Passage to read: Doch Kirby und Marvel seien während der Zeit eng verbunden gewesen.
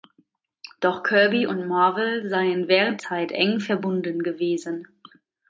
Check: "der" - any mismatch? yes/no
yes